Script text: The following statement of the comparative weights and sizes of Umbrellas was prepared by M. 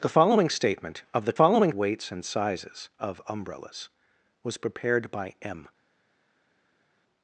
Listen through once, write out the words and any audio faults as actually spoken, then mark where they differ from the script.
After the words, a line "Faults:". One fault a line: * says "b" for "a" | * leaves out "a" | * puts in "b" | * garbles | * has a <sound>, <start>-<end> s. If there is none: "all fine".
The following statement of the following weights and sizes of Umbrellas was prepared by M.
Faults:
* says "following" for "comparative"